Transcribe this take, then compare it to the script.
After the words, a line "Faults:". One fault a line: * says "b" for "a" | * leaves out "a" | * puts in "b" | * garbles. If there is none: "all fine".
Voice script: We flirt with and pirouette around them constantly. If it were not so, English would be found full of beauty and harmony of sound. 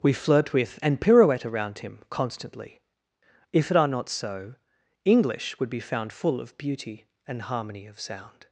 We flirt with and pirouette around him constantly. If it are not so, English would be found full of beauty and harmony of sound.
Faults:
* says "him" for "them"
* says "are" for "were"